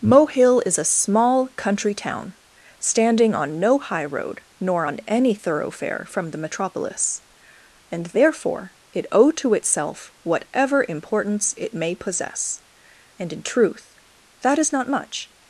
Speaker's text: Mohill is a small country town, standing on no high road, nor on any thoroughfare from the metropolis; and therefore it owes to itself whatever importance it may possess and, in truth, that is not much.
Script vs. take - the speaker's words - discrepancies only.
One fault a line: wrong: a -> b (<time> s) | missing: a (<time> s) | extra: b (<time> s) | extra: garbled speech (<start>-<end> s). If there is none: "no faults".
wrong: owes -> owe (9.1 s)